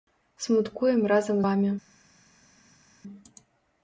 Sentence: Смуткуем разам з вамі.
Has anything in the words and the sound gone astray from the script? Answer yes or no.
yes